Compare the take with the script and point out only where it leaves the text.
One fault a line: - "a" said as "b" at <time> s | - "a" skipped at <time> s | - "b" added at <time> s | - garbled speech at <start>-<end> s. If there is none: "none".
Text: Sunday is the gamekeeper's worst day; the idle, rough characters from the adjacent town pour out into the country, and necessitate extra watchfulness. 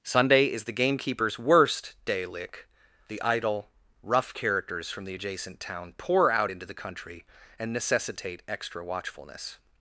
- "lick" added at 2.2 s